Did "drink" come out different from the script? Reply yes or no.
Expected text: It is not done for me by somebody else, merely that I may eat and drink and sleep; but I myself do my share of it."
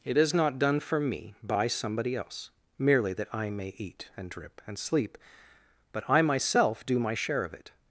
yes